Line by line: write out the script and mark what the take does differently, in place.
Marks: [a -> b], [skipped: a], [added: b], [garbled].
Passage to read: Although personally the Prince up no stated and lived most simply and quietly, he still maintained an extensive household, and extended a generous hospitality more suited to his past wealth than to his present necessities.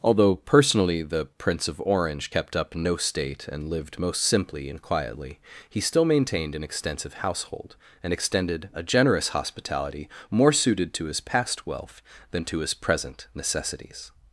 Although personally the Prince [added: of Orange kept] up no [stated -> state] and lived most simply and quietly, he still maintained an extensive household, and extended a generous hospitality more suited to his past wealth than to his present necessities.